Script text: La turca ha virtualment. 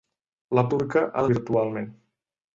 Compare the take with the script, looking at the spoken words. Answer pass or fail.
pass